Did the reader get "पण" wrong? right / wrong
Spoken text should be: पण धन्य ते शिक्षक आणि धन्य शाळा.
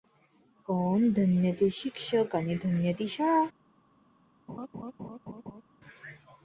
right